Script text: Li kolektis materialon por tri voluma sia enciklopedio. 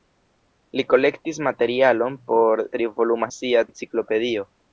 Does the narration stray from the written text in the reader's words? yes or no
no